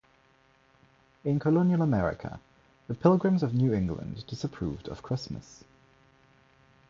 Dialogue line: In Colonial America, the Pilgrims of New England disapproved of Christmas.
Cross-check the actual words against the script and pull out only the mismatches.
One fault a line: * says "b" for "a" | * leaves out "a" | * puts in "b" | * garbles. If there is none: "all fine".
all fine